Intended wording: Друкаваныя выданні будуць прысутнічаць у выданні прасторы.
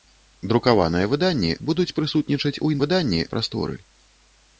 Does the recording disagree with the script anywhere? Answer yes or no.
no